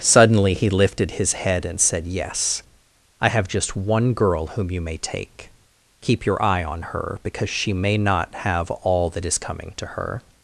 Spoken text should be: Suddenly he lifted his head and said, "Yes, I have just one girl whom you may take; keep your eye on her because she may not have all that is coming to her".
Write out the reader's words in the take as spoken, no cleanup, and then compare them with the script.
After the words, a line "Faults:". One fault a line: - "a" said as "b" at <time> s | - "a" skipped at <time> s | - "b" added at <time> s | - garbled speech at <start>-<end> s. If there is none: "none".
Suddenly he lifted his head and said, "Yes, I have just one girl whom you may take; keep your eye on her because she may not have all that is coming to her".
Faults:
none